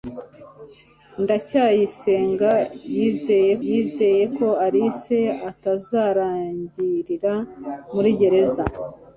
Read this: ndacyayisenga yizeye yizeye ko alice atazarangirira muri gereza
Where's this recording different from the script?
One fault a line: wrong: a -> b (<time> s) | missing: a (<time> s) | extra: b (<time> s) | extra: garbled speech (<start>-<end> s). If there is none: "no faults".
no faults